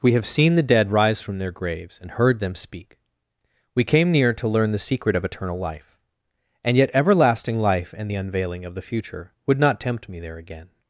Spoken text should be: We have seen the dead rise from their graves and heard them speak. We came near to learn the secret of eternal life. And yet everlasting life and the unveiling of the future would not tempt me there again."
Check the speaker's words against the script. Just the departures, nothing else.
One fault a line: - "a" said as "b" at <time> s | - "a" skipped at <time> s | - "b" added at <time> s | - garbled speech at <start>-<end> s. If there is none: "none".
none